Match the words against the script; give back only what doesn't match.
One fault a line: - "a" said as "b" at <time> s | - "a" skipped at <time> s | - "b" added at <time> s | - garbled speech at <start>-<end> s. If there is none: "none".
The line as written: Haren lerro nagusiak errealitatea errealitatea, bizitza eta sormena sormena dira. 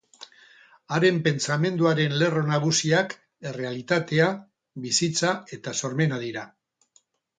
- "pentsamenduaren" added at 1.3 s
- "errealitatea" skipped at 4.3 s
- "sormena" skipped at 6.2 s